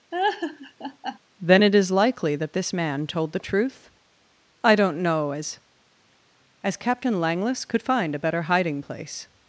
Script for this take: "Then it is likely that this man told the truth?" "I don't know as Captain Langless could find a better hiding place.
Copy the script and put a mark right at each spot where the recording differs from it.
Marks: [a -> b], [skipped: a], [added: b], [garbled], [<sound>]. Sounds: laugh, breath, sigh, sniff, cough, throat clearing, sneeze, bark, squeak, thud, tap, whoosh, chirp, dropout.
[laugh] "Then it is likely that this man told the truth?" "I don't know as [added: as] Captain Langless could find a better hiding place.